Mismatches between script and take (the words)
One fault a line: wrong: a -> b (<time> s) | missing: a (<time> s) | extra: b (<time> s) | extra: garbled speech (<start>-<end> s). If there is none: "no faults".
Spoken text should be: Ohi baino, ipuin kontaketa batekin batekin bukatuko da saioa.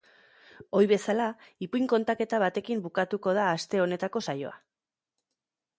wrong: baino -> bezala (0.9 s)
missing: batekin (2.8 s)
extra: aste honetako (3.6 s)